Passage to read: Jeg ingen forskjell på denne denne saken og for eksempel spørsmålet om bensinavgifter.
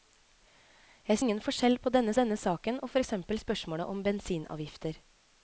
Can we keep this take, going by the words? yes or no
yes